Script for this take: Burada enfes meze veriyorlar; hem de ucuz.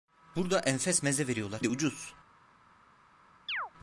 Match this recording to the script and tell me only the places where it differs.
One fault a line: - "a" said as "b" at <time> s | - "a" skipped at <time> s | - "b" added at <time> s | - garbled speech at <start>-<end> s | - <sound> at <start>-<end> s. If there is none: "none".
- "hem" skipped at 1.6 s
- chirp at 3.5-3.7 s